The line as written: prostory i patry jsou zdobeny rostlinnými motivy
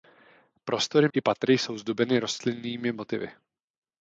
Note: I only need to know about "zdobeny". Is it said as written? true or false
true